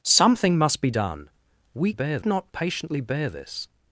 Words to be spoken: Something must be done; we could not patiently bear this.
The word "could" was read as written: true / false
false